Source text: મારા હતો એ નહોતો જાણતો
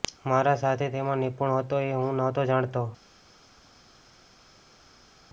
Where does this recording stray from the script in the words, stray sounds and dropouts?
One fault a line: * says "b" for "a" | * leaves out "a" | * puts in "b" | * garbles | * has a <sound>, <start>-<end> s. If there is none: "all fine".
* puts in "સાથી તેમાં નિપુણ"
* puts in "હું"